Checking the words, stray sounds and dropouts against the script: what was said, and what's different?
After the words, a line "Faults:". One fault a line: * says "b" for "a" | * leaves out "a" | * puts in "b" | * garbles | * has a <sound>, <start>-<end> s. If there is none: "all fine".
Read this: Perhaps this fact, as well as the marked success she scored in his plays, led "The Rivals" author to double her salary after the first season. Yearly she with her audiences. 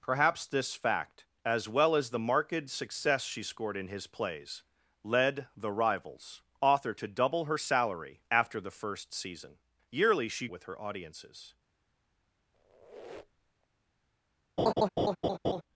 Perhaps this fact, as well as the marked success she scored in his plays, led "The Rivals" author to double her salary after the first season. Yearly she with her audiences.
Faults:
* has a squeak, 12.5-13.7 s
* has a laugh, 14.6-15.6 s